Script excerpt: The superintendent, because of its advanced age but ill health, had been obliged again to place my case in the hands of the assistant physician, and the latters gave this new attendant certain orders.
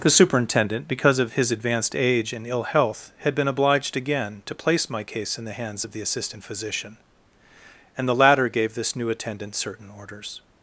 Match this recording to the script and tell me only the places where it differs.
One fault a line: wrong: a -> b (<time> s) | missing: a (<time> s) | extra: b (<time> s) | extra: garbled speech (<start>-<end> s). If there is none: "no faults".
wrong: its -> his (1.3 s)
wrong: but -> and (2.3 s)
wrong: latters -> latter (8.1 s)